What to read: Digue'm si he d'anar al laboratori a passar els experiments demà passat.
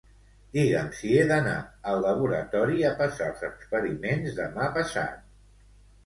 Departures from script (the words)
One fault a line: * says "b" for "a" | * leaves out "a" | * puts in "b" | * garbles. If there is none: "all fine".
all fine